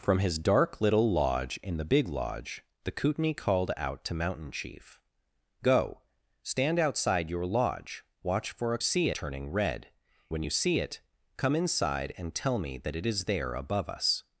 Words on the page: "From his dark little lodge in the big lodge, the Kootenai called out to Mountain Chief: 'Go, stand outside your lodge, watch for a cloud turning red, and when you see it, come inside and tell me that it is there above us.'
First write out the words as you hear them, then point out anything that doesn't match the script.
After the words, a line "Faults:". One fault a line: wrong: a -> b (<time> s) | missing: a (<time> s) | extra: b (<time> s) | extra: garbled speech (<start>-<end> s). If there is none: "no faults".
"From his dark little lodge in the big lodge, the Kootenai called out to Mountain Chief: 'Go, stand outside your lodge, watch for a see turning red, when you see it, come inside and tell me that it is there above us.'
Faults:
wrong: cloud -> see (8.8 s)
missing: and (9.9 s)